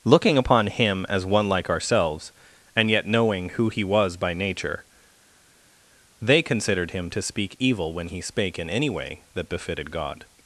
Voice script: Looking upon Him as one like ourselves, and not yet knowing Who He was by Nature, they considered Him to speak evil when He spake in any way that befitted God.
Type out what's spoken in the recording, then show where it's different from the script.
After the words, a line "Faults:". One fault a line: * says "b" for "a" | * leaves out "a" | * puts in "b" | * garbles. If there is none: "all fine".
Looking upon Him as one like ourselves, and yet knowing Who He was by Nature, they considered Him to speak evil when He spake in any way that befitted God.
Faults:
* leaves out "not"